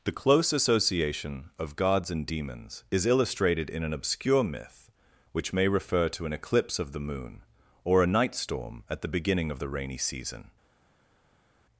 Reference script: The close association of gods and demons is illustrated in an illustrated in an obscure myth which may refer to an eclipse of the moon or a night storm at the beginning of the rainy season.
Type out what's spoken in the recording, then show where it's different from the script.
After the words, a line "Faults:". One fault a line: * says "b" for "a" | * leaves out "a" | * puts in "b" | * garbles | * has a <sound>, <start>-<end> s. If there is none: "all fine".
The close association of gods and demons is illustrated in an obscure myth which may refer to an eclipse of the moon or a night storm at the beginning of the rainy season.
Faults:
* leaves out "illustrated in an"